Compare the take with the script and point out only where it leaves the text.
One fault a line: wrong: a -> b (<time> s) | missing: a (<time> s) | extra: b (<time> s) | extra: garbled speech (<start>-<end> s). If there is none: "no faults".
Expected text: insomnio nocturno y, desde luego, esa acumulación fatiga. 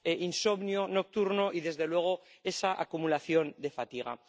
extra: de (3.6 s)